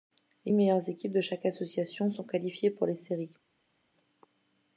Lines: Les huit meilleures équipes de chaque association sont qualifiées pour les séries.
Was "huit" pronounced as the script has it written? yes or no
no